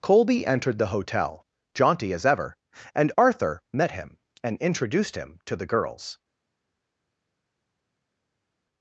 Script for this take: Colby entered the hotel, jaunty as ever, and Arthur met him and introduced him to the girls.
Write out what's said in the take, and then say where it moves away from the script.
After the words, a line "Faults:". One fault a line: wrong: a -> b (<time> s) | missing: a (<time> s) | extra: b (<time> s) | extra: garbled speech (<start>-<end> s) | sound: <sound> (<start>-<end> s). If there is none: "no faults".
Colby entered the hotel, jaunty as ever, and Arthur met him and introduced him to the girls.
Faults:
no faults